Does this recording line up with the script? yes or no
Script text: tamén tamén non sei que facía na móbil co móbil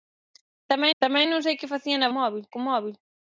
yes